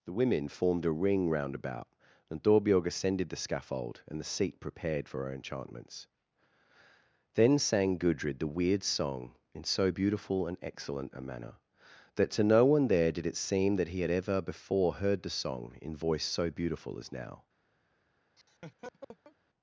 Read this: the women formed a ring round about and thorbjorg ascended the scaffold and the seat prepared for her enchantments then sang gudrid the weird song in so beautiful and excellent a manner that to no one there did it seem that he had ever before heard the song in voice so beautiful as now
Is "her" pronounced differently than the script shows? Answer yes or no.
no